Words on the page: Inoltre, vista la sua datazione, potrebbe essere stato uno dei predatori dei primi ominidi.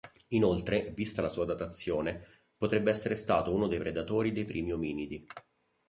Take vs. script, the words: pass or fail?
pass